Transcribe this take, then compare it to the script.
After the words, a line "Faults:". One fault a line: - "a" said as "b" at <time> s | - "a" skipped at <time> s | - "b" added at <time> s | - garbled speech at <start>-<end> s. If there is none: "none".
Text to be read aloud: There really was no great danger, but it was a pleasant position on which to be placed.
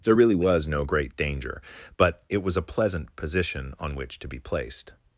There really was no great danger, but it was a pleasant position on which to be placed.
Faults:
none